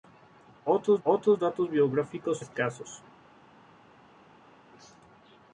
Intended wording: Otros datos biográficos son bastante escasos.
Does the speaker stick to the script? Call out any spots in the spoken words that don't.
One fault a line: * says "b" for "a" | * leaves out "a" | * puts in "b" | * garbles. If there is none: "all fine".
* puts in "otros"
* leaves out "son bastante"